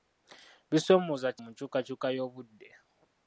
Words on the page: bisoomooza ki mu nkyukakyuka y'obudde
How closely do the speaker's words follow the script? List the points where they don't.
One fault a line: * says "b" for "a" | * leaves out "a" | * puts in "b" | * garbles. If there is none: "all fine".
all fine